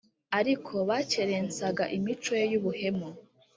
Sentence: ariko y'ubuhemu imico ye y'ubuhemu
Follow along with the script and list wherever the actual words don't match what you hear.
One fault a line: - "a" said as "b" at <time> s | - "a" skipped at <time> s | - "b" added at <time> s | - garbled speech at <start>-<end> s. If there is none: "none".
- "y'ubuhemu" said as "bakerensaga" at 0.9 s